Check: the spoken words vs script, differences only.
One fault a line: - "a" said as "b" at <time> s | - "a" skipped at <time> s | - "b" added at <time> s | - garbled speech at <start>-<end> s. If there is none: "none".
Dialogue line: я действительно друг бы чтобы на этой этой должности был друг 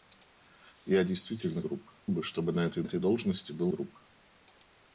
none